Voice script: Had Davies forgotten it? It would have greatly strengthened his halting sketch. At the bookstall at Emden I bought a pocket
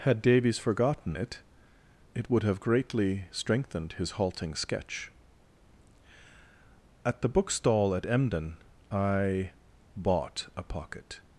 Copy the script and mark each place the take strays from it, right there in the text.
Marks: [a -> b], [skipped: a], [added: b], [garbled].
Had Davies forgotten it? It would have greatly strengthened his halting sketch. At the bookstall at Emden I bought a pocket